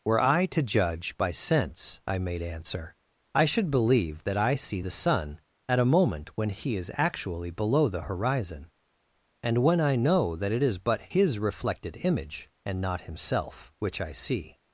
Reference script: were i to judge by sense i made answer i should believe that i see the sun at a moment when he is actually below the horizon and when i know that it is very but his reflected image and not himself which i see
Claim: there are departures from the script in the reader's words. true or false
true